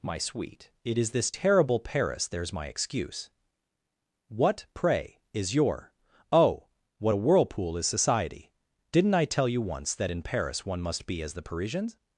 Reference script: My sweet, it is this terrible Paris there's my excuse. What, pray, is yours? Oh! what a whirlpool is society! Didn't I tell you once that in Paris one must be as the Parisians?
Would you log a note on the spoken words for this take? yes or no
yes